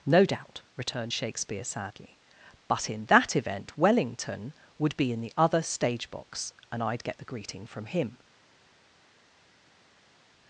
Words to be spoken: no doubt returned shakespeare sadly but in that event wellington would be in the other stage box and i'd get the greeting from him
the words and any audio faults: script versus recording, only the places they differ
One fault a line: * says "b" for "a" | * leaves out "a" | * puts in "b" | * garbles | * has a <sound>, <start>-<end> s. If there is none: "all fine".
all fine